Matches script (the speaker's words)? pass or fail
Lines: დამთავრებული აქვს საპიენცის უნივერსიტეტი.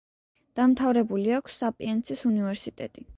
pass